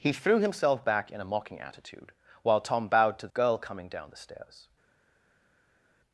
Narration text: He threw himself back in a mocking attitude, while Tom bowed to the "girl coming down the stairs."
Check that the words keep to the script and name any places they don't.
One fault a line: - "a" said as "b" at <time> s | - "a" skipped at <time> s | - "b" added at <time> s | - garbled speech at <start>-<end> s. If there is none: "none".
- "the" skipped at 3.3 s